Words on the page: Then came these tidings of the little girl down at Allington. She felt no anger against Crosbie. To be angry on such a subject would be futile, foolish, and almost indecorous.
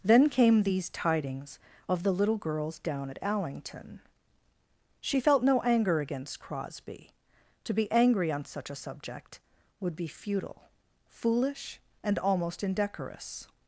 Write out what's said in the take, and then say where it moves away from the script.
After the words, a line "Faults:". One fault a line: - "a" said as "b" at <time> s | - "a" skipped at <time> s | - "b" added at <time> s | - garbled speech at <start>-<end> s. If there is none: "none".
Then came these tidings of the little girls down at Allington. She felt no anger against Crosbie. To be angry on such a subject would be futile, foolish, and almost indecorous.
Faults:
- "girl" said as "girls" at 2.4 s